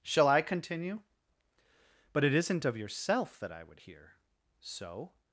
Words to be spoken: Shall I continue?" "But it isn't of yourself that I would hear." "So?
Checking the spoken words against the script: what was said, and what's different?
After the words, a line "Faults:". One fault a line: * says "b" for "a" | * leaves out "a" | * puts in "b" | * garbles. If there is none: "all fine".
Shall I continue?" "But it isn't of yourself that I would hear." "So?
Faults:
all fine